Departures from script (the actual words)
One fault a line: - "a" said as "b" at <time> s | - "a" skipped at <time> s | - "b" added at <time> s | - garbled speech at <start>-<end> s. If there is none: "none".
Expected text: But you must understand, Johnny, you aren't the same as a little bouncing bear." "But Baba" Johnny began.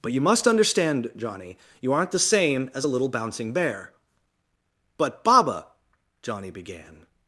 none